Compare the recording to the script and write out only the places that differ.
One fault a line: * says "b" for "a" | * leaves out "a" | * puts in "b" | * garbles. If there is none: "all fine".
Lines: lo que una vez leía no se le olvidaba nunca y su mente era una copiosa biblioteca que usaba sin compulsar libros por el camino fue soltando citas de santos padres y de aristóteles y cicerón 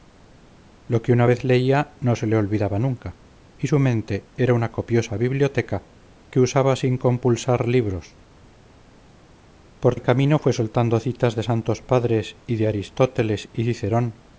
all fine